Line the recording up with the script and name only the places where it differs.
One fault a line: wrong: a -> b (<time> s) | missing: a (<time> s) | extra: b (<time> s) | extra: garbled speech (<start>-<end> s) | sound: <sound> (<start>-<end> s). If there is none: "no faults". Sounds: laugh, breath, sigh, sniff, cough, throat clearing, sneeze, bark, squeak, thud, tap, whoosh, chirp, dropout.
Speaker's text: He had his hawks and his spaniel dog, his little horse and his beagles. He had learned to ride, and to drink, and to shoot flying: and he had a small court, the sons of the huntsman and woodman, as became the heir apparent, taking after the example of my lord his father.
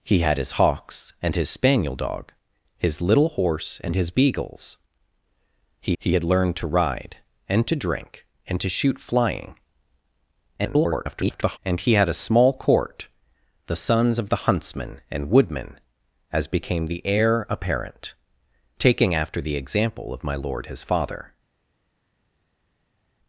extra: he (6.0 s)
extra: garbled speech (10.6-11.6 s)